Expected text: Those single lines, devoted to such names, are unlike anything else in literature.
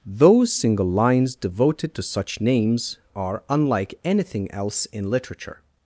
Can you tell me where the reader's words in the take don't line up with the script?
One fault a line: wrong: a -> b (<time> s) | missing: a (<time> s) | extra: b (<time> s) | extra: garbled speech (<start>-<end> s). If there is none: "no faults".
no faults